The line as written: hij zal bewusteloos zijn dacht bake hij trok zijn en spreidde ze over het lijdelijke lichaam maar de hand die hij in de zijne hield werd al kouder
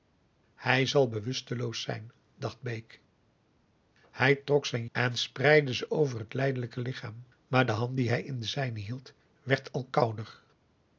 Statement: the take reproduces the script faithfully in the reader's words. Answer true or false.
true